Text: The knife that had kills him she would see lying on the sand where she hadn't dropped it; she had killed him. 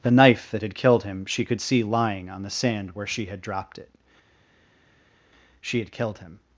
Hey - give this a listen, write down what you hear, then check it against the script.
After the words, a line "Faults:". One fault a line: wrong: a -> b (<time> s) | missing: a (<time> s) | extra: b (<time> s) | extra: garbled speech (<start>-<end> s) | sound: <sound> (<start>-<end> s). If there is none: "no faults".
The knife that had killed him she could see lying on the sand where she had dropped it; she had killed him.
Faults:
wrong: kills -> killed (0.7 s)
wrong: would -> could (1.4 s)
wrong: hadn't -> had (3.3 s)